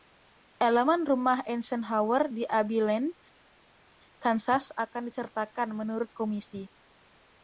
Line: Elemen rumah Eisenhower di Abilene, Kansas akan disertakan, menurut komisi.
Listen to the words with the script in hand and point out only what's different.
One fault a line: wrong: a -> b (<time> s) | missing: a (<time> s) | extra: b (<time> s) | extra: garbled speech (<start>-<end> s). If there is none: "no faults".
no faults